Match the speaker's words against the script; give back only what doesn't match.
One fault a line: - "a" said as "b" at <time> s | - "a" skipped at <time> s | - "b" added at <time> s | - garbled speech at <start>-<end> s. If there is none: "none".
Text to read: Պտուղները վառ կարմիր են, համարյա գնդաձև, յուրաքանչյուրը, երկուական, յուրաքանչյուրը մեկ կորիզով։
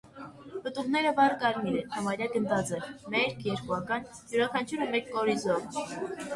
- "յուրաքանչյուրը" said as "մերկ" at 3.2 s